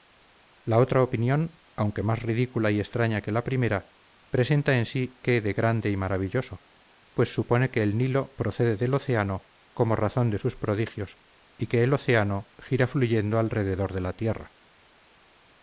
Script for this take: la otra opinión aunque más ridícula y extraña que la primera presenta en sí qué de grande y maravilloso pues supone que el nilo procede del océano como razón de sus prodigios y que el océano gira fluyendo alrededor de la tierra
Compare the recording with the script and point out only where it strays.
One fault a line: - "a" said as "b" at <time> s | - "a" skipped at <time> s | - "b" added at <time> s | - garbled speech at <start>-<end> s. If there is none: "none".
none